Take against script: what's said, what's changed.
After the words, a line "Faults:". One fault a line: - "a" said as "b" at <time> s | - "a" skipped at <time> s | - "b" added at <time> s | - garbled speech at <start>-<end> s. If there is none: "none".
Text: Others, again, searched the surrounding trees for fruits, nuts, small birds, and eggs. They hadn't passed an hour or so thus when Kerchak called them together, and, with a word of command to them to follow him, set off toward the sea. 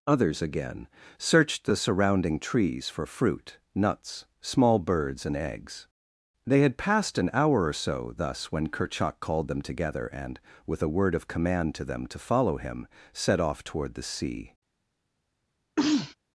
Others, again, searched the surrounding trees for fruit, nuts, small birds, and eggs. They had passed an hour or so thus when Kerchak called them together, and, with a word of command to them to follow him, set off toward the sea.
Faults:
- "fruits" said as "fruit" at 3.0 s
- "hadn't" said as "had" at 6.6 s